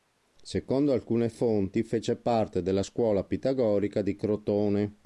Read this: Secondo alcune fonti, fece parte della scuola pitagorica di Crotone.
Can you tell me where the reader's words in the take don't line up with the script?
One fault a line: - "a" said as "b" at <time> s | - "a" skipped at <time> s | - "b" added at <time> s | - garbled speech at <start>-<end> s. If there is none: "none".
none